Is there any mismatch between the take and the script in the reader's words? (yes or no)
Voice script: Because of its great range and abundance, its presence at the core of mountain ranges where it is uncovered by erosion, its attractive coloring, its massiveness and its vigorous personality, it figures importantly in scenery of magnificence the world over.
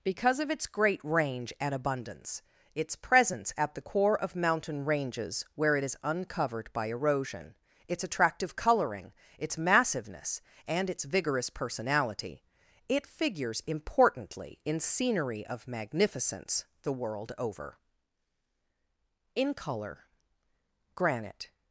yes